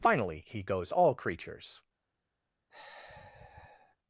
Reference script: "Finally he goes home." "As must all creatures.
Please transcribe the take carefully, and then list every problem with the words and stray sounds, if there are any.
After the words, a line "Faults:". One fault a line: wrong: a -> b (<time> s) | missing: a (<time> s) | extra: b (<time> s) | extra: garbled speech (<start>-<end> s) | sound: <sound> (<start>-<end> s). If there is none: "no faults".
"Finally he goes all creatures.
Faults:
missing: home As must (0.9 s)
sound: sigh (2.7-4.0 s)